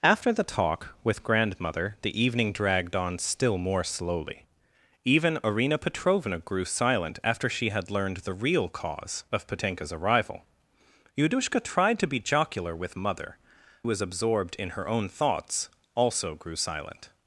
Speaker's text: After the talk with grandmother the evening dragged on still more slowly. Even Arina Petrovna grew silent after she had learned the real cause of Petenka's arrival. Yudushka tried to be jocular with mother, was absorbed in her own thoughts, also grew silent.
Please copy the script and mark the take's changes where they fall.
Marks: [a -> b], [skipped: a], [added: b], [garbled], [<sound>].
After the talk with grandmother the evening dragged on still more slowly. Even Arina Petrovna grew silent after she had learned the real cause of Petenka's arrival. Yudushka tried to be jocular with mother, was absorbed in her own thoughts, also grew silent.